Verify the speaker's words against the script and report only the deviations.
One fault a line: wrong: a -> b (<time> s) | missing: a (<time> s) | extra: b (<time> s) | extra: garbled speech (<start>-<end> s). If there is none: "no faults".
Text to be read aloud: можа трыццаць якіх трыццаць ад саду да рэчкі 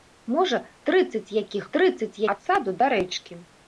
no faults